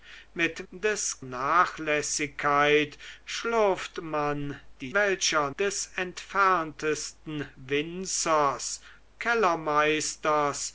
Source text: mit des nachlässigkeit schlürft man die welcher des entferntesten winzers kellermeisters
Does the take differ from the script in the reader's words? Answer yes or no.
no